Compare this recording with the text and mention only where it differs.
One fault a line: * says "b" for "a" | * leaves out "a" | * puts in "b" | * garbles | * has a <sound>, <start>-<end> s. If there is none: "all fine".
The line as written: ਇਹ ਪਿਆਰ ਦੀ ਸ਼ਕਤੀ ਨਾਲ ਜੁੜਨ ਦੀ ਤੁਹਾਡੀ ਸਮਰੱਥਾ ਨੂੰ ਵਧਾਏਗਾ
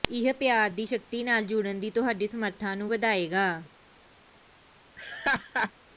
* has a laugh, 5.0-5.7 s